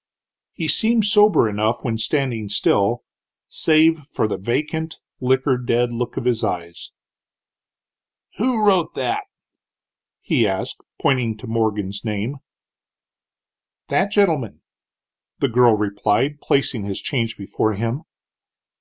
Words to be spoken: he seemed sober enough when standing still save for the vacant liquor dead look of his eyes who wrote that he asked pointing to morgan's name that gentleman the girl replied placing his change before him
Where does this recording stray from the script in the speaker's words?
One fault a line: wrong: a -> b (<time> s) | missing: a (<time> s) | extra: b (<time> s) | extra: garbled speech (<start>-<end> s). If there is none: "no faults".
no faults